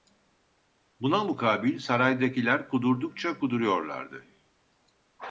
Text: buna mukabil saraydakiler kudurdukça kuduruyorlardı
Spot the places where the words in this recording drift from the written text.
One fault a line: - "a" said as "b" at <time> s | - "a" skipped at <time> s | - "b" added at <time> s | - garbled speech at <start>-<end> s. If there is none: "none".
none